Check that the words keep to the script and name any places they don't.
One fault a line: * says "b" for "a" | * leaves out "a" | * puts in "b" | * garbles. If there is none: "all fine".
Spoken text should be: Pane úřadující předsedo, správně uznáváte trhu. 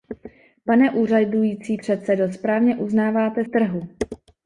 all fine